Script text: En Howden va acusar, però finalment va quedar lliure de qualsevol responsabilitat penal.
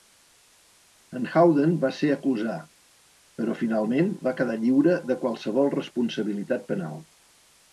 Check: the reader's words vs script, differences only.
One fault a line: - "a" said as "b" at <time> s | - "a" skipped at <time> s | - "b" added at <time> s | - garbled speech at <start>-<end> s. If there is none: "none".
- "ser" added at 2.0 s